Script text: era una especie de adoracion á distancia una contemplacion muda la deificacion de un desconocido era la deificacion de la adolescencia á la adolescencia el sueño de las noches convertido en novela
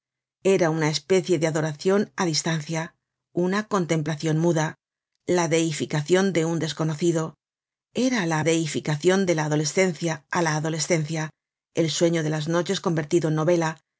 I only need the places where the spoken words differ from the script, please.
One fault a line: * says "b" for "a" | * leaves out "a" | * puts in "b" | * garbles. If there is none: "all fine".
all fine